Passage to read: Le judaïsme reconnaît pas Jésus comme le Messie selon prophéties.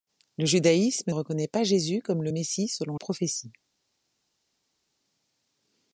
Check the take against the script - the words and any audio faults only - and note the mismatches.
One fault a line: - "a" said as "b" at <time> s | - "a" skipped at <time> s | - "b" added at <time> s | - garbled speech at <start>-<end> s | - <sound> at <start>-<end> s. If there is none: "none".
none